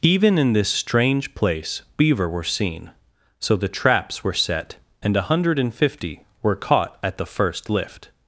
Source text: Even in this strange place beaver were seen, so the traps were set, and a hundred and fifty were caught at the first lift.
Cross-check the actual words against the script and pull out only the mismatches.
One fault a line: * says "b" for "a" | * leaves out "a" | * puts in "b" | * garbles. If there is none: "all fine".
all fine